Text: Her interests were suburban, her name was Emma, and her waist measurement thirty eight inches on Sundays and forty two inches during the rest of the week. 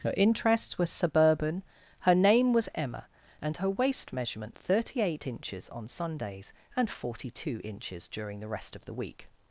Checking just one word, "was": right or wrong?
right